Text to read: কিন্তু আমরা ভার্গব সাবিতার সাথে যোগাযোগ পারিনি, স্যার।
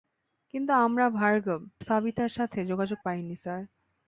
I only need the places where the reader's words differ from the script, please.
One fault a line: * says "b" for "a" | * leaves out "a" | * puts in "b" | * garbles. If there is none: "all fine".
all fine